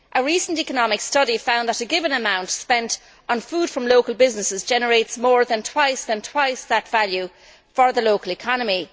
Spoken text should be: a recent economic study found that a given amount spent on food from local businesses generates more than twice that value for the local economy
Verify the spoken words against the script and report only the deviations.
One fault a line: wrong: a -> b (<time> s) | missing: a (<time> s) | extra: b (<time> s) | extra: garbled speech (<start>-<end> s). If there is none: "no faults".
extra: than twice (6.0 s)